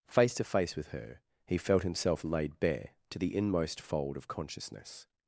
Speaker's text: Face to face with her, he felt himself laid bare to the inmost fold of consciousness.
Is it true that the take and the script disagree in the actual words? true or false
false